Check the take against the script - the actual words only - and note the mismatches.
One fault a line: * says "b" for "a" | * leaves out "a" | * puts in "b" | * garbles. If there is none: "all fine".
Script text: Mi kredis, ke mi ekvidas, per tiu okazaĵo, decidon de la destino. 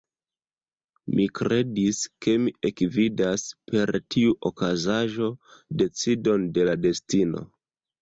all fine